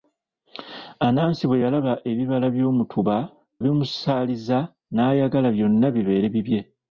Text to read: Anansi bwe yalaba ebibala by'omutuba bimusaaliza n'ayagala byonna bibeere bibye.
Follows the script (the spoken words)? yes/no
yes